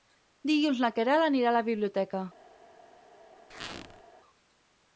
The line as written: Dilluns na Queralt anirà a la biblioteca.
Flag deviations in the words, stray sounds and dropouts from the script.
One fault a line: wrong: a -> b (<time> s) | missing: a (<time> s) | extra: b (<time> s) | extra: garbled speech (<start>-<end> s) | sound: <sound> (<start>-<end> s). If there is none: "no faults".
sound: squeak (3.5-4.0 s)